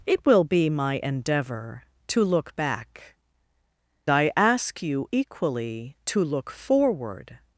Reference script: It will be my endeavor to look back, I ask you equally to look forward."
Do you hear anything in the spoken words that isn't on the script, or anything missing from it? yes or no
no